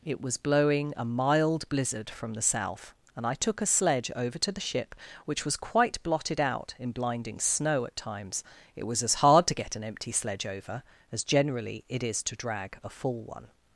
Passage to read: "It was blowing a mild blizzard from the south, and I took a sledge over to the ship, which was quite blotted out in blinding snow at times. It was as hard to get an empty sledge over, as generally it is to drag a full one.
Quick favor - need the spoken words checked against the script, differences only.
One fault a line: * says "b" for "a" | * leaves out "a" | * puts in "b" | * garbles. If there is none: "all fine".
all fine